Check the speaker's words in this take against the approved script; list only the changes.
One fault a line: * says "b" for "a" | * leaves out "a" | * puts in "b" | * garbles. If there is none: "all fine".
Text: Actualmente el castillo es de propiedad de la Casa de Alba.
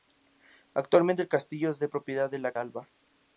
* leaves out "Casa de"